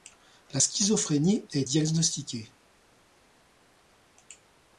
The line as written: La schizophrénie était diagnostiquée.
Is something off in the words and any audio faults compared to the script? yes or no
yes